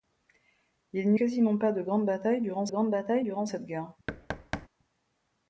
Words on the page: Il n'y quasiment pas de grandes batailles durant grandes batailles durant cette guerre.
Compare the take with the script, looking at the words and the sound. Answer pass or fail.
fail